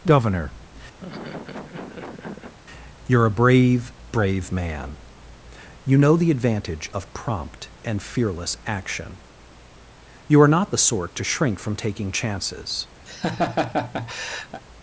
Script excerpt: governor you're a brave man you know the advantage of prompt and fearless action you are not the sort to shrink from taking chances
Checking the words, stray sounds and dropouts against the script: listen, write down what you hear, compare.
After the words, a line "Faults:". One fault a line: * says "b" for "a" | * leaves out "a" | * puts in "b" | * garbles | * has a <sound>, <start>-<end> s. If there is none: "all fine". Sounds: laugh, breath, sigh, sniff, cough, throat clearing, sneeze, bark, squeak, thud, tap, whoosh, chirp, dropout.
governor you're a brave brave man you know the advantage of prompt and fearless action you are not the sort to shrink from taking chances
Faults:
* has a laugh, 1.0-2.5 s
* puts in "brave"
* has a laugh, 13.1-14.6 s